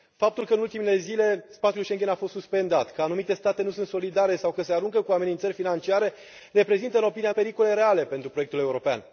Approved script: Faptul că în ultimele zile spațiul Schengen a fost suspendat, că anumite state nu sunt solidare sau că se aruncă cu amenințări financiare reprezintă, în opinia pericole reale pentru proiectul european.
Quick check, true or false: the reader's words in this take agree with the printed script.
true